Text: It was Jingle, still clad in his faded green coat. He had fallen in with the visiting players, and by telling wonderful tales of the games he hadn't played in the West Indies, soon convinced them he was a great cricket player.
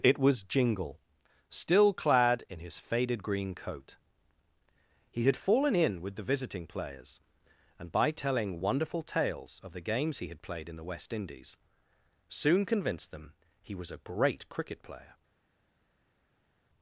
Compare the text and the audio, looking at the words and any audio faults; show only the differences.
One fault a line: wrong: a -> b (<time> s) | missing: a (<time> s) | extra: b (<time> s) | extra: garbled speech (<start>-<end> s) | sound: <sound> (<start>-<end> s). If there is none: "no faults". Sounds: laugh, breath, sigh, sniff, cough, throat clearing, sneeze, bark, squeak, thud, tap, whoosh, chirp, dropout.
wrong: hadn't -> had (10.3 s)